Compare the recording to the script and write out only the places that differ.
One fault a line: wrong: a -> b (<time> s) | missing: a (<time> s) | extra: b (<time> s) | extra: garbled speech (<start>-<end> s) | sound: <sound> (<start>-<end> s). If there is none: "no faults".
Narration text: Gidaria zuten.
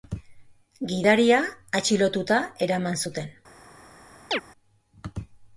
extra: atxilotuta eraman (1.8 s)
sound: chirp (4.3-4.4 s)